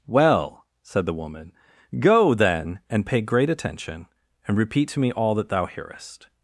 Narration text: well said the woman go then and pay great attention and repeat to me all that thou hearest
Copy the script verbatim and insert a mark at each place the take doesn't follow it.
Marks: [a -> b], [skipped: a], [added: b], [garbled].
well said the woman go then and pay great attention and repeat to me all that thou hearest